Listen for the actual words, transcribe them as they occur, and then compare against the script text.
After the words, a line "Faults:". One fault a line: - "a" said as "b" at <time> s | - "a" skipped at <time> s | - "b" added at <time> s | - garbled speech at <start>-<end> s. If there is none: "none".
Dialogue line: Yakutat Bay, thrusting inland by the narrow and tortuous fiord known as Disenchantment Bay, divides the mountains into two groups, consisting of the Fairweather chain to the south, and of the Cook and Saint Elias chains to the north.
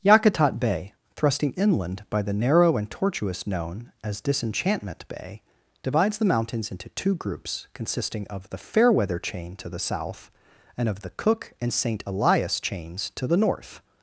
Yakutat Bay, thrusting inland by the narrow and tortuous known as Disenchantment Bay, divides the mountains into two groups, consisting of the Fairweather chain to the south, and of the Cook and Saint Elias chains to the north.
Faults:
- "fiord" skipped at 3.5 s